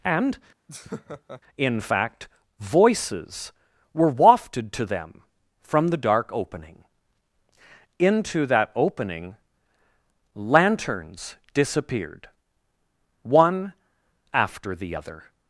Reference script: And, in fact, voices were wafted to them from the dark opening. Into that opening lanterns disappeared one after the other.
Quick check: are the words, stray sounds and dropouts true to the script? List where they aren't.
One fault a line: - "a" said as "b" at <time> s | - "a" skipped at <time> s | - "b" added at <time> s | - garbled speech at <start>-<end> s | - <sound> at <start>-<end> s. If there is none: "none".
- laugh at 0.7-1.4 s